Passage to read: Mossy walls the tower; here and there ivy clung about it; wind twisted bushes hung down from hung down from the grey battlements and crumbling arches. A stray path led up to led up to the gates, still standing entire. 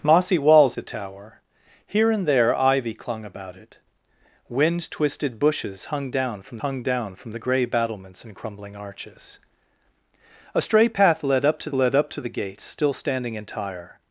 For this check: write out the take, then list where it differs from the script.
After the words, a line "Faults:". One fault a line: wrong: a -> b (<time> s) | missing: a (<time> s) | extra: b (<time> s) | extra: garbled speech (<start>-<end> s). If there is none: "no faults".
Mossy walls the tower; here and there ivy clung about it; wind twisted bushes hung down from hung down from the grey battlements and crumbling arches. A stray path led up to led up to the gates, still standing entire.
Faults:
no faults